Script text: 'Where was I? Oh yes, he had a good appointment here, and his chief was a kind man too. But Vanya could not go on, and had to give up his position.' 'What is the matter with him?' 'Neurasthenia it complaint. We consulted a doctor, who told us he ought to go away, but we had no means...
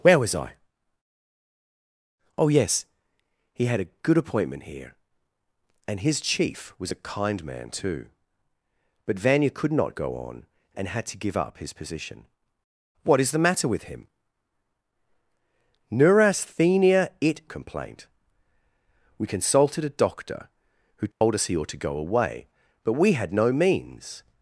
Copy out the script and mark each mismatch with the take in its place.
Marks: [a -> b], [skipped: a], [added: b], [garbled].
'Where was I? Oh yes, he had a good appointment here, and his chief was a kind man too. But Vanya could not go on, and had to give up his position.' 'What is the matter with him?' 'Neurasthenia it complaint. We consulted a doctor, who told us he ought to go away, but we had no means...